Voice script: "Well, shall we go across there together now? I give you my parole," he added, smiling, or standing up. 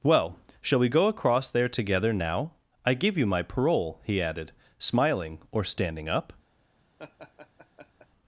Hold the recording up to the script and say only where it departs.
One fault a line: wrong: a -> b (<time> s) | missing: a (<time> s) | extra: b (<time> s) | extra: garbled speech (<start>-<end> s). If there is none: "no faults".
no faults